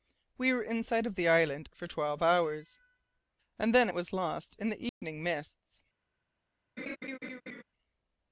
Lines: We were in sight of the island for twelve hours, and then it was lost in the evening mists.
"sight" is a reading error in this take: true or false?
false